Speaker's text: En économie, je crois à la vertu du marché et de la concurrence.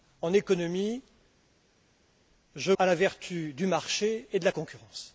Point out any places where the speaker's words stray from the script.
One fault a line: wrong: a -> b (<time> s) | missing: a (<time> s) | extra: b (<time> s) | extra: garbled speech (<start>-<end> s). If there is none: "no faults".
missing: crois (2.7 s)